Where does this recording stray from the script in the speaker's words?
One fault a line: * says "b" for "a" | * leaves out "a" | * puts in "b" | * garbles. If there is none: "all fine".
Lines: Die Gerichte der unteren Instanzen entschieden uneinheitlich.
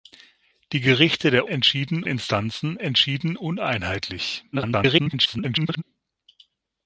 * says "entschieden" for "unteren"
* garbles